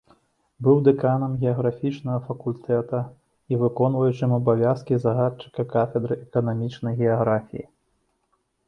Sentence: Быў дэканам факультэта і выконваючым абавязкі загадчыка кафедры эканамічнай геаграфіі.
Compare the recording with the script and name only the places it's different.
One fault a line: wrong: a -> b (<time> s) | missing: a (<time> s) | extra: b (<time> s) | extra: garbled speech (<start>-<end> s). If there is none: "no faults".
extra: геаграфічнага (1.4 s)